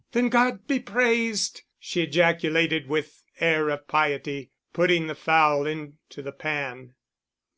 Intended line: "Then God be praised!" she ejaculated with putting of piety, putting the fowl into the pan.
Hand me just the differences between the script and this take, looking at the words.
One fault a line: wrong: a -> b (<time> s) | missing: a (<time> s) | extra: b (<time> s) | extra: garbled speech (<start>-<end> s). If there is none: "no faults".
wrong: putting -> air (3.4 s)